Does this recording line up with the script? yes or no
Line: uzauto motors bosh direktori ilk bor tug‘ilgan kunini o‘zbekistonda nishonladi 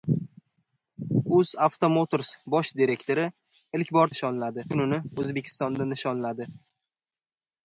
no